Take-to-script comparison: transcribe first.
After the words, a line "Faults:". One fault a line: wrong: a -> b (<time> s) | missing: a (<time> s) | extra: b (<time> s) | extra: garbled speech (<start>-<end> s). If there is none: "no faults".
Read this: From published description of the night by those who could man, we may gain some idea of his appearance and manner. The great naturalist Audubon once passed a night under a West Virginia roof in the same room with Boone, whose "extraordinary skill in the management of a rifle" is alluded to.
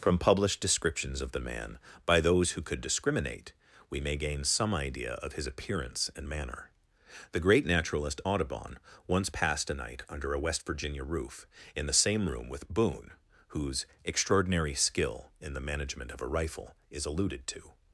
From published descriptions of the man by those who could discriminate, we may gain some idea of his appearance and manner. The great naturalist Audubon once passed a night under a West Virginia roof in the same room with Boone, whose "extraordinary skill in the management of a rifle" is alluded to.
Faults:
wrong: description -> descriptions (0.6 s)
wrong: night -> man (1.4 s)
wrong: man -> discriminate (2.8 s)